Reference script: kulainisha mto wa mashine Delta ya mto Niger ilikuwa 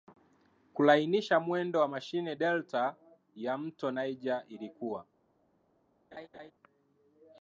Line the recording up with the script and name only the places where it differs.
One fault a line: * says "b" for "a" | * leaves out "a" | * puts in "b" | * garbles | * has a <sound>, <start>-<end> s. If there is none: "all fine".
* says "mwendo" for "mto"
* has a laugh, 6.1-6.5 s